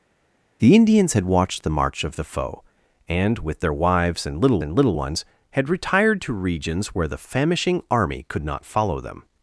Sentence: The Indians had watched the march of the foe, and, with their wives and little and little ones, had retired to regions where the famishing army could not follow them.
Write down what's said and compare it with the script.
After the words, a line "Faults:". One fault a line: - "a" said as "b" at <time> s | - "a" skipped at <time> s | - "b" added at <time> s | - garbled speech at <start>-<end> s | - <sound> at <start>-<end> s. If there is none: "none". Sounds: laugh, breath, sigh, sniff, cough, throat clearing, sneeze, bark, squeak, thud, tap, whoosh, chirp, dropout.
The Indians had watched the march of the foe, and, with their wives and little and little ones, had retired to regions where the famishing army could not follow them.
Faults:
none